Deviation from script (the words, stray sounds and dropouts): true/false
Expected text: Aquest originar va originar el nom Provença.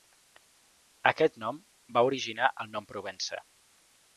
true